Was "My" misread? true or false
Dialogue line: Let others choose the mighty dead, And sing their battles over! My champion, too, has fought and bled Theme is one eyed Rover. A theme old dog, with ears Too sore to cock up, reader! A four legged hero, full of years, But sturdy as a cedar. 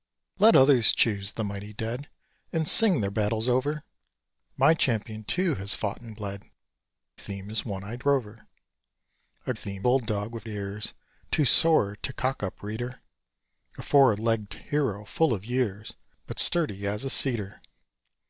false